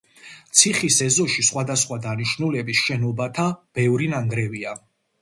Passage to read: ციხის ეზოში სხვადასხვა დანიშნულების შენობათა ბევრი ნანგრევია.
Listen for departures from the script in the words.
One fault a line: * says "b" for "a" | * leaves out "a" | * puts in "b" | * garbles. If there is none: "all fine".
all fine